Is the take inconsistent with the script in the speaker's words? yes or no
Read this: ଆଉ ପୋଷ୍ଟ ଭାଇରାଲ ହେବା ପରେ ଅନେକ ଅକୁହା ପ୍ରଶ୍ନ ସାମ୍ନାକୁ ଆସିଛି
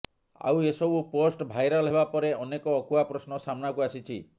yes